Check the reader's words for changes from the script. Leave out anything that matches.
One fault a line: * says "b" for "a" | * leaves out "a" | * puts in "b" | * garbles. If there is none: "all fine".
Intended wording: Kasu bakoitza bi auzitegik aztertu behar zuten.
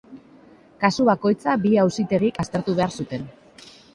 all fine